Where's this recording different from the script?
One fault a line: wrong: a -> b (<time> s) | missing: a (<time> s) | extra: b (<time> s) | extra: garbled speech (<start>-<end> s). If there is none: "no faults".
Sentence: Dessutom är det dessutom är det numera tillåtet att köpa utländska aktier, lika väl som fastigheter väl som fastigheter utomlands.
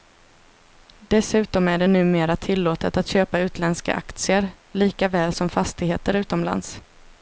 missing: dessutom är det (1.9 s)
missing: väl som fastigheter (6.1 s)